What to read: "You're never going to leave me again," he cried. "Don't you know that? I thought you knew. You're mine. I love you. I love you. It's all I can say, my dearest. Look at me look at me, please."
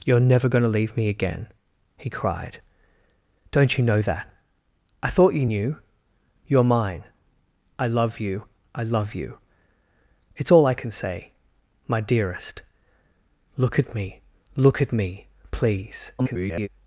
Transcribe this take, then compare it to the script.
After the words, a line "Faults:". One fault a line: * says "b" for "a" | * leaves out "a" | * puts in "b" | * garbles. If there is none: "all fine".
"You're never going to leave me again," he cried. "Don't you know that? I thought you knew. You're mine. I love you. I love you. It's all I can say, my dearest. Look at me look at me, please." [garbled]
Faults:
* garbles